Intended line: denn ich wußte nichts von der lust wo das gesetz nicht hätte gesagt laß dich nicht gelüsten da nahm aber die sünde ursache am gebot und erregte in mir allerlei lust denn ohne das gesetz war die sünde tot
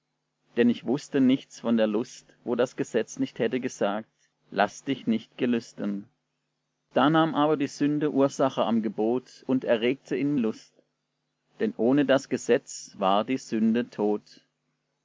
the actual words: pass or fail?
fail